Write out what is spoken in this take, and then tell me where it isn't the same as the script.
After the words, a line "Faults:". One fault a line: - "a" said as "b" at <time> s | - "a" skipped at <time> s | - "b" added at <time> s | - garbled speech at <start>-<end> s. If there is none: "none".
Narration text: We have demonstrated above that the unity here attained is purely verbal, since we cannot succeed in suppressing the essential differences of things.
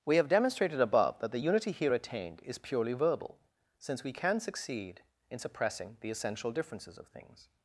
We have demonstrated above that the unity here attained is purely verbal, since we can succeed in suppressing the essential differences of things.
Faults:
- "cannot" said as "can" at 4.1 s